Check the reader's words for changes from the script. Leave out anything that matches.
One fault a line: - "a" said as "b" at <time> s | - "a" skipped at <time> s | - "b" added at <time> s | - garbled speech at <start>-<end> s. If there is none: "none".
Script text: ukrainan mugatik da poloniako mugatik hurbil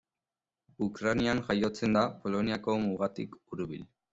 - "mugatik" said as "jaiotzen" at 1.5 s